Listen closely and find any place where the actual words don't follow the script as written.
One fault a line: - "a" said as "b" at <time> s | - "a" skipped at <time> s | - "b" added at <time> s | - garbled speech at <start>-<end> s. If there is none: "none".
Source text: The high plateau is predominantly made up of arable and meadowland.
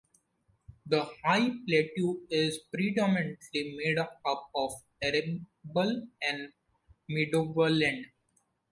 none